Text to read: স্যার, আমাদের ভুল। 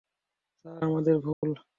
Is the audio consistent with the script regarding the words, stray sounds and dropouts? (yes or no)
no